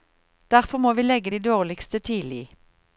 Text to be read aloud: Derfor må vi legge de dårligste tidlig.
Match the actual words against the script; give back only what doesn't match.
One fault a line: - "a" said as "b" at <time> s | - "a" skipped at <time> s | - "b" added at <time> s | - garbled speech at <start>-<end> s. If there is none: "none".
none